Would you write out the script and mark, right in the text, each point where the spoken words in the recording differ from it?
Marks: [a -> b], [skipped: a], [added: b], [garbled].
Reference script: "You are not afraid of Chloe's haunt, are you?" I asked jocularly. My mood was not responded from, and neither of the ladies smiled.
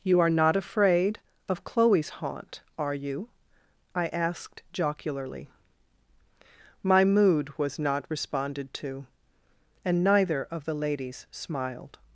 "You are not afraid of Chloe's haunt, are you?" I asked jocularly. My mood was not responded [from, -> to] and neither of the ladies smiled.